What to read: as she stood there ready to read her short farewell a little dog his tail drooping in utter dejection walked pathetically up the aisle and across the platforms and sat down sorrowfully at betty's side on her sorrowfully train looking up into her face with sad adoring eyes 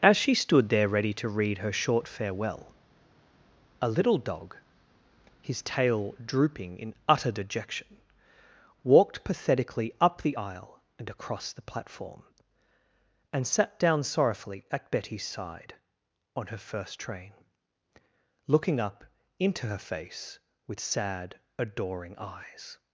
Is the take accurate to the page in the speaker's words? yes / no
no